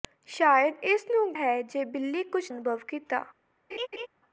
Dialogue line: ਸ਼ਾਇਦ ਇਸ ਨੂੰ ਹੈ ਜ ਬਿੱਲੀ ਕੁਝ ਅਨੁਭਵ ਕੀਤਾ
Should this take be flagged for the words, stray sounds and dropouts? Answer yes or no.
yes